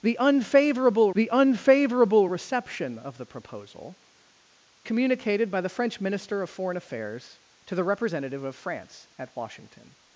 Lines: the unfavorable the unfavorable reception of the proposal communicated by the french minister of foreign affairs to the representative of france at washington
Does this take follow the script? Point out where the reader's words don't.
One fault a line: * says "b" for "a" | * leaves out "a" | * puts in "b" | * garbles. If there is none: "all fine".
all fine